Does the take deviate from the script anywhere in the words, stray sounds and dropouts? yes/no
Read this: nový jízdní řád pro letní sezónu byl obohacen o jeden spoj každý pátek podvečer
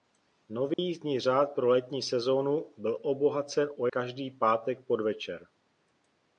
yes